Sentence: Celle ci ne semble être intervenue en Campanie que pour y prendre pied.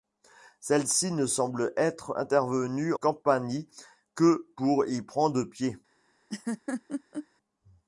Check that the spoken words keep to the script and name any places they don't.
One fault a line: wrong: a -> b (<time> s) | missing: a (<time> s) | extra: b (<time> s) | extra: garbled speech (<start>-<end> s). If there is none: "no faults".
missing: en (3.0 s)